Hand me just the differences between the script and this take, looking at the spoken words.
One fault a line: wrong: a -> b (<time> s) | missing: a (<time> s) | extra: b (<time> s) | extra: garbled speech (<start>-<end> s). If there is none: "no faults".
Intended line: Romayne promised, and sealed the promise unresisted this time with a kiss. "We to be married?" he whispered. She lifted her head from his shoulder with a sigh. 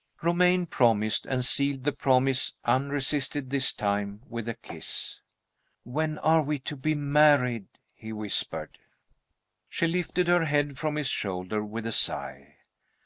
extra: When are (5.8 s)